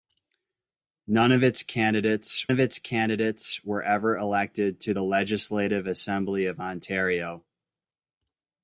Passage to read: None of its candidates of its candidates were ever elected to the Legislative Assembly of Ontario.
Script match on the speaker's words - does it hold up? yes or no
yes